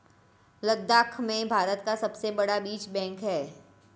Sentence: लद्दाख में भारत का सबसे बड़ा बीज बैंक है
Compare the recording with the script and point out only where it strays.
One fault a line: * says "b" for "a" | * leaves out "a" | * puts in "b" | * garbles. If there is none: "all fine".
all fine